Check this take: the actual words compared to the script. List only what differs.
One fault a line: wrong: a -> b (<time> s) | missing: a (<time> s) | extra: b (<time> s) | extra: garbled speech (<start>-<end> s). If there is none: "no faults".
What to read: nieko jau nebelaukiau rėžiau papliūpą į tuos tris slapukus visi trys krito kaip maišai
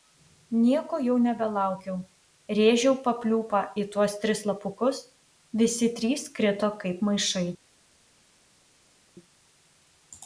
no faults